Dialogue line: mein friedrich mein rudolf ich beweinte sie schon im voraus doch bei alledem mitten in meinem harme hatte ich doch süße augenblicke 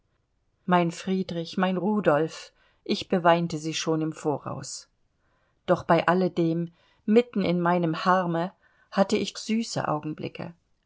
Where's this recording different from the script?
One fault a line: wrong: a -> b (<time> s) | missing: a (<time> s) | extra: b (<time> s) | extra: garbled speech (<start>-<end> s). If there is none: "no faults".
missing: doch (9.3 s)